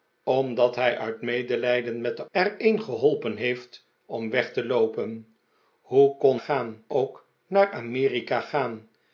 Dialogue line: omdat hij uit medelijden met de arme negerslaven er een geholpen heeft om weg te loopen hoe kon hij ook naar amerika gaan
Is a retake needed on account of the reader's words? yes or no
yes